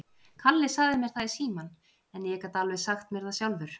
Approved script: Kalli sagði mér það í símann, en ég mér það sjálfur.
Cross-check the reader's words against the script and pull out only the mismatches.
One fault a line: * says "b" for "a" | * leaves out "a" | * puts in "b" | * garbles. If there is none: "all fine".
* puts in "gat alveg sagt"